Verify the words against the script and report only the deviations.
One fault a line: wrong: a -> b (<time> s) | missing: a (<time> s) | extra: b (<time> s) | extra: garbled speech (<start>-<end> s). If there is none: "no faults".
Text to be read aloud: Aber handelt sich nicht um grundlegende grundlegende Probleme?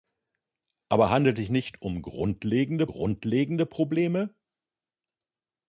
no faults